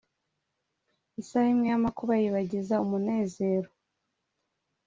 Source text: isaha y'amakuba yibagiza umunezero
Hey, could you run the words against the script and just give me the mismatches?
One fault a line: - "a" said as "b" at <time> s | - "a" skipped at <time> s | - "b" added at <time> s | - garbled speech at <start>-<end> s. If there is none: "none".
- "imwe" added at 1.5 s